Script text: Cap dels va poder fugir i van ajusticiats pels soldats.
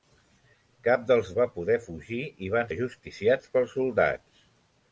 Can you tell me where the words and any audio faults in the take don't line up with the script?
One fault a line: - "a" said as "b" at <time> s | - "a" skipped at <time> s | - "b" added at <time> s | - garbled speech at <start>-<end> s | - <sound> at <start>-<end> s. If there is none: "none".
none